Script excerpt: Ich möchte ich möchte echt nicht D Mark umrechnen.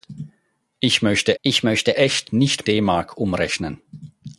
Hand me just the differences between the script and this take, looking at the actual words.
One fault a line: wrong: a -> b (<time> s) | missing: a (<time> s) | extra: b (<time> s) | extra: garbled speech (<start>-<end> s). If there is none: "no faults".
no faults